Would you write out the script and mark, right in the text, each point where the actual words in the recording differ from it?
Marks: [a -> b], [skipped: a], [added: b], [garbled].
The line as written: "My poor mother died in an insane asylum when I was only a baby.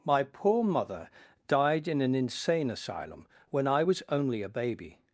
"My poor mother died in an insane asylum when I was only a baby.